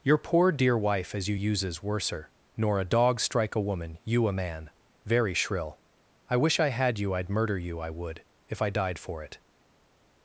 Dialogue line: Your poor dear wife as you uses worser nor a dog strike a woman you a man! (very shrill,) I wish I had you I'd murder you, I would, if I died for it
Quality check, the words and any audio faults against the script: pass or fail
pass